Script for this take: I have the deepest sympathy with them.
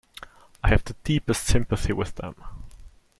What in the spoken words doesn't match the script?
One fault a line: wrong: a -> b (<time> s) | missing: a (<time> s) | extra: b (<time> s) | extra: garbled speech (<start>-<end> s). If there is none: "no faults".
no faults